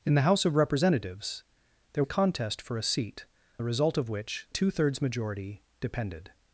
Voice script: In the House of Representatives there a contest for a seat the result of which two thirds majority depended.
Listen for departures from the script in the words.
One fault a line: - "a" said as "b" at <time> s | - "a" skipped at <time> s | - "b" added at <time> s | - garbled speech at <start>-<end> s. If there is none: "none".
none